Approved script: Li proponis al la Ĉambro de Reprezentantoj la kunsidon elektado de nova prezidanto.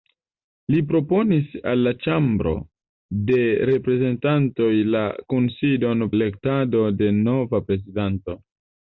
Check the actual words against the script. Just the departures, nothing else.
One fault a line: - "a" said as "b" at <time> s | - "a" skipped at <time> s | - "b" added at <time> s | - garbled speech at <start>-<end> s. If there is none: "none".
none